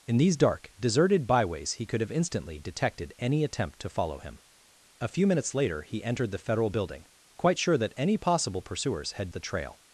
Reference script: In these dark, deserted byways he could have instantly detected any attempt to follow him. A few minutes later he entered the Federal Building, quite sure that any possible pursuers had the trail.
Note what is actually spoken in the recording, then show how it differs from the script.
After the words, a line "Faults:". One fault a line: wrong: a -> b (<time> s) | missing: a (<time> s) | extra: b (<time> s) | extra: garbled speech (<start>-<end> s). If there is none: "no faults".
In these dark, deserted byways he could have instantly detected any attempt to follow him. A few minutes later he entered the Federal Building, quite sure that any possible pursuers had the trail.
Faults:
no faults